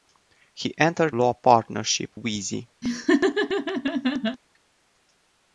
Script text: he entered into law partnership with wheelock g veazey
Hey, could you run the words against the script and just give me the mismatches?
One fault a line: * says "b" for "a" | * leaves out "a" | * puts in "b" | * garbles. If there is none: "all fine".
* leaves out "into"
* leaves out "with wheelock g"